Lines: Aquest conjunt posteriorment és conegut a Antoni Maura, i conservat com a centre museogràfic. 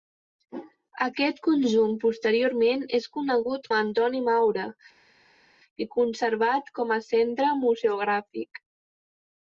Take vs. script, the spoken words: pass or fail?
pass